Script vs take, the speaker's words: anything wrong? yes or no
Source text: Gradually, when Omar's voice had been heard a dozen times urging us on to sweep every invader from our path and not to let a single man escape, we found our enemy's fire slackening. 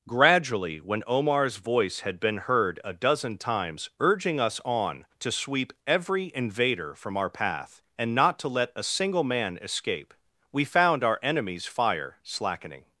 no